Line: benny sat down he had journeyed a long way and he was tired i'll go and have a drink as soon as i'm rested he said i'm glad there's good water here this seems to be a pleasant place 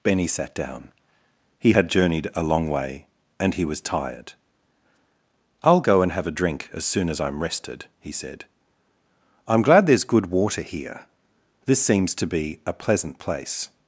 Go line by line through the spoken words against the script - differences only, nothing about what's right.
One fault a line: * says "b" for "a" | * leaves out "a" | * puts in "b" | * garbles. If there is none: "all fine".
all fine